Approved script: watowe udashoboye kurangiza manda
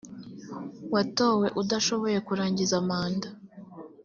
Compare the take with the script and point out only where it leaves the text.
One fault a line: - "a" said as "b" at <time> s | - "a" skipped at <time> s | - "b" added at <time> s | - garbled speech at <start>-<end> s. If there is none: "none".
none